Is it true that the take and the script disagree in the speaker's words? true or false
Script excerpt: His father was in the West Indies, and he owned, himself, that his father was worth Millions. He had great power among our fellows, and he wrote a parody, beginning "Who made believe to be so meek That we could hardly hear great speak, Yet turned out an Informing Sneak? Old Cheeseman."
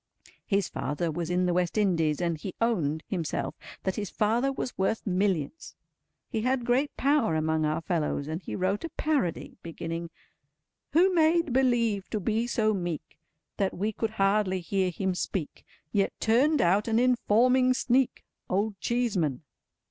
true